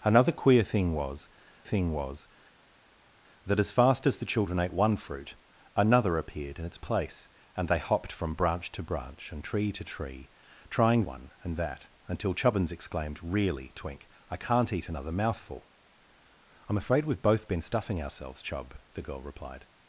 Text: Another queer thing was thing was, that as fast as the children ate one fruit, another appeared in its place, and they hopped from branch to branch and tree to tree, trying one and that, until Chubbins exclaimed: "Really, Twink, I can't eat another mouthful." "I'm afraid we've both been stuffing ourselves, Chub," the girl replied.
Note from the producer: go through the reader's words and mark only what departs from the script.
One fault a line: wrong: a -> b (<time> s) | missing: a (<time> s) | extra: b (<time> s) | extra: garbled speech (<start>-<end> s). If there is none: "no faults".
no faults